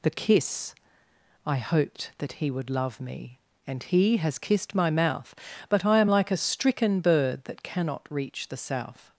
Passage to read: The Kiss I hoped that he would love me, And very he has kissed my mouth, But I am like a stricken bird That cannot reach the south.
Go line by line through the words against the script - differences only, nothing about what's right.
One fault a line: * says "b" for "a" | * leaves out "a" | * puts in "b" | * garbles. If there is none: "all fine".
* leaves out "very"